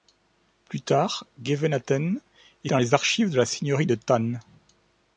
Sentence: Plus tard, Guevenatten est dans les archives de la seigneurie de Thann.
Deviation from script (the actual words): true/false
false